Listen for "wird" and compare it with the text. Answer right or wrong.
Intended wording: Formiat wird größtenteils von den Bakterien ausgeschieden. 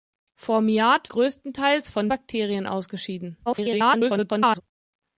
wrong